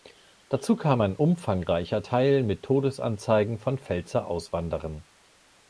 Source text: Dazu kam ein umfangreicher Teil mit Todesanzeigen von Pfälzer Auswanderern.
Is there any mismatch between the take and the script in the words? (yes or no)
no